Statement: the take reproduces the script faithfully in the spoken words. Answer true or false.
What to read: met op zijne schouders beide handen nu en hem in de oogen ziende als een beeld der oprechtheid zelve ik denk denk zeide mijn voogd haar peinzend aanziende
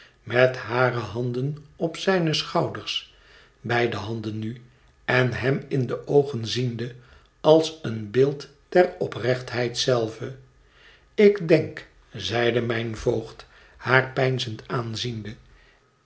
false